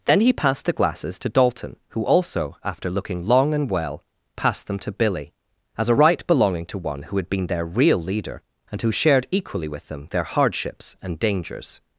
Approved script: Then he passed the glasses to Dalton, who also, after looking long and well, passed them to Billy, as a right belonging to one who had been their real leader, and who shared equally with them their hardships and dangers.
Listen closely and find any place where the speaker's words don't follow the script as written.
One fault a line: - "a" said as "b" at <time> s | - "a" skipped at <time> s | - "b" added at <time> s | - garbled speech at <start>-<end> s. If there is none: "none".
none